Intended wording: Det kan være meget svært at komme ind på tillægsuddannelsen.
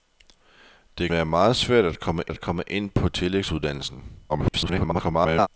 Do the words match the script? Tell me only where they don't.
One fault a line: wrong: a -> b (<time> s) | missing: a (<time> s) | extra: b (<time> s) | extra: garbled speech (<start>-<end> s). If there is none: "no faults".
missing: kan (1.1 s)
extra: at komme (2.3 s)
extra: garbled speech (4.3-5.5 s)